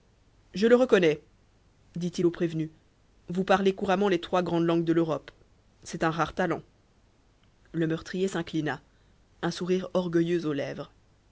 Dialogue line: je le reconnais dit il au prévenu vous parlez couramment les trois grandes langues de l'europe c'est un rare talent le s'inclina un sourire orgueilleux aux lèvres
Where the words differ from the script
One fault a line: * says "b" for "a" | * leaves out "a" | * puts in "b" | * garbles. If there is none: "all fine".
* puts in "meurtrier"